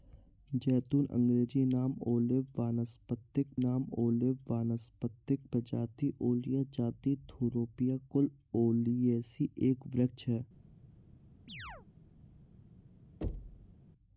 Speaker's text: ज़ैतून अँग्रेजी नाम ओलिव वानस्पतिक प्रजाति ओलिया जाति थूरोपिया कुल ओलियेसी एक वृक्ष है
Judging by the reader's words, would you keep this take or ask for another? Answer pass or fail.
fail